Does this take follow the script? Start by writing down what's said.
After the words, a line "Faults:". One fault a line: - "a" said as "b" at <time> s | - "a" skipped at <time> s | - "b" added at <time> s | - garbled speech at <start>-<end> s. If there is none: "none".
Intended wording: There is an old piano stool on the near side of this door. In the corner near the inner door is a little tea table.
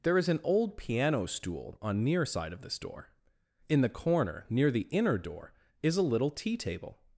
There is an old piano stool on near side of this door. In the corner near the inner door is a little tea table.
Faults:
- "the" skipped at 2.0 s